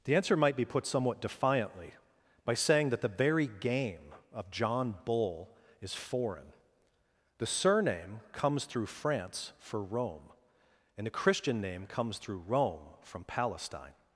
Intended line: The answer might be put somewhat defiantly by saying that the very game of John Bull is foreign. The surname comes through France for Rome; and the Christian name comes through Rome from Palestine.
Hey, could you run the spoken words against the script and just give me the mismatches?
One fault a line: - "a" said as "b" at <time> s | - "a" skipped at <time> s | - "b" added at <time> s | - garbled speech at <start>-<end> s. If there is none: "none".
none